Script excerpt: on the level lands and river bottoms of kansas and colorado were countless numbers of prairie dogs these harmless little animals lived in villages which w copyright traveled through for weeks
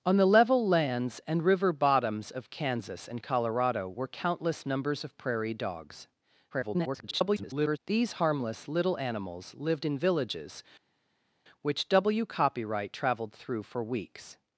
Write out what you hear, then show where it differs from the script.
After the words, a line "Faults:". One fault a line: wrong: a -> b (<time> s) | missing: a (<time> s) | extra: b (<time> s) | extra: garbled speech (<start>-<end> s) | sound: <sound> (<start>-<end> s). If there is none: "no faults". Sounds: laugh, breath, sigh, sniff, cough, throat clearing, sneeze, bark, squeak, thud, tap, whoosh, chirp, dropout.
on the level lands and river bottoms of kansas and colorado were countless numbers of prairie dogs [garbled] these harmless little animals lived in villages which w copyright traveled through for weeks
Faults:
extra: garbled speech (6.5-7.8 s)